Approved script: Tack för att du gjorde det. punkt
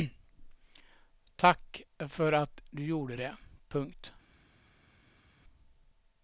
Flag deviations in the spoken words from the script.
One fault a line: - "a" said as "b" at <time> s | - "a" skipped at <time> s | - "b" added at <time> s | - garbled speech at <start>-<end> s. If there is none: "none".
none